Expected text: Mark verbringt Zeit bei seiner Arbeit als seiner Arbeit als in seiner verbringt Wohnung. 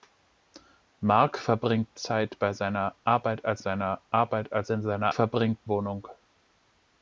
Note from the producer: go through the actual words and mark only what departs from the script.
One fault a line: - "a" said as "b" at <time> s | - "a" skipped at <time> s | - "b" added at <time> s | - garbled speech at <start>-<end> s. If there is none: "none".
none